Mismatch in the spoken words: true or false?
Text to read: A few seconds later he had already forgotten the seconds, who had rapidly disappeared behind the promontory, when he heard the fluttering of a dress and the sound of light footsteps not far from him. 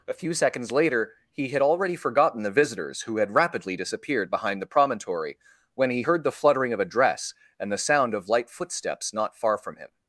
true